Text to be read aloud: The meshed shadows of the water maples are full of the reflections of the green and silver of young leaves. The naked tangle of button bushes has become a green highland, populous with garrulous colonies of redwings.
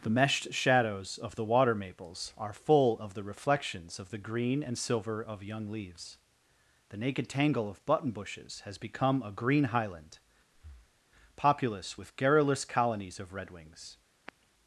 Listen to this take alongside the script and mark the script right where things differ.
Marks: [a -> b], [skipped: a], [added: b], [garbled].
The meshed shadows of the water maples are full of the reflections of the green and silver of young leaves. The naked tangle of button bushes has become a green highland, populous with garrulous colonies of redwings.